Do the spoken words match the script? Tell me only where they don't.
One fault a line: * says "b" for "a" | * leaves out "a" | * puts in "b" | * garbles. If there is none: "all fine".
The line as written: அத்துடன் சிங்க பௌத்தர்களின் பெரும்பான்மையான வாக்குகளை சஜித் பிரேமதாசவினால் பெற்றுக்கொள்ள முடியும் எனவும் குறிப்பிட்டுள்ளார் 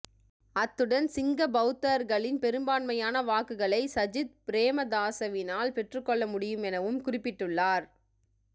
all fine